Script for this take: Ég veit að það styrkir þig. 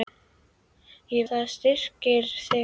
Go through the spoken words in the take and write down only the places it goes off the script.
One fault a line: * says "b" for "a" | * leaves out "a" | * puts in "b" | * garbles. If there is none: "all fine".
* leaves out "veit"